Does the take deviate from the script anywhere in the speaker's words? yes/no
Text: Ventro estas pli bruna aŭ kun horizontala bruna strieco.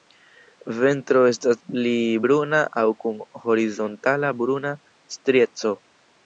no